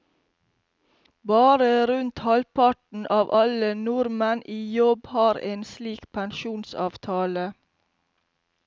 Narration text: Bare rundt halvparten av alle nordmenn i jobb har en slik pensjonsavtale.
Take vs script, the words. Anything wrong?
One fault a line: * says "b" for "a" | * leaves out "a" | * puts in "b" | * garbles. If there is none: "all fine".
all fine